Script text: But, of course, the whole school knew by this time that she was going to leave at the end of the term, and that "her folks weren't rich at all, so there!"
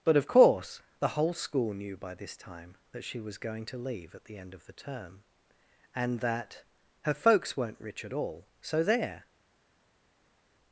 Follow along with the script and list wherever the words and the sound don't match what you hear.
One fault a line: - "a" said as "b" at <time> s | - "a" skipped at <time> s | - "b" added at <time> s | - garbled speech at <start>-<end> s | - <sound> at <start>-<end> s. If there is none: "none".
none